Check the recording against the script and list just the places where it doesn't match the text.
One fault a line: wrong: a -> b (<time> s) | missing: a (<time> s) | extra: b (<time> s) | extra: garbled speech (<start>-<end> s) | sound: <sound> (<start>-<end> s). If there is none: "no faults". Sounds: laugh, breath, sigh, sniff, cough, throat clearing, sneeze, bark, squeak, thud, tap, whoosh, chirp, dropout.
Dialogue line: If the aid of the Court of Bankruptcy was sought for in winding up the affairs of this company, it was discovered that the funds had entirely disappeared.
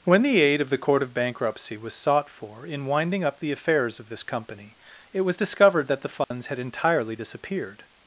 wrong: If -> When (0.0 s)
sound: dropout (6.2-6.3 s)